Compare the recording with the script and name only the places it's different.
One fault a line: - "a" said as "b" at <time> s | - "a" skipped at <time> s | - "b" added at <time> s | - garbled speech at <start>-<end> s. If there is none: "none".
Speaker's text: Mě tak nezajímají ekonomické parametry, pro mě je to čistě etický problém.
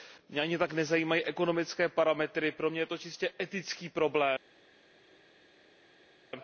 - "ani" added at 0.4 s